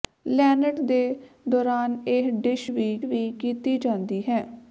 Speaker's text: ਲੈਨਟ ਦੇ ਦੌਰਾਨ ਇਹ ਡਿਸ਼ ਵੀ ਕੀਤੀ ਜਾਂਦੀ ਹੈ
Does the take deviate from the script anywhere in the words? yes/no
yes